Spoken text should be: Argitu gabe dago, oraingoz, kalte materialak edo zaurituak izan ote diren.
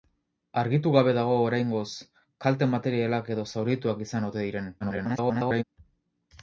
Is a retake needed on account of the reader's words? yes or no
yes